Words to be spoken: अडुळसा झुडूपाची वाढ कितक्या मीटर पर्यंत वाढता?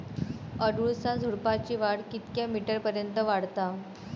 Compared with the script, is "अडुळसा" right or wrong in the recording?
right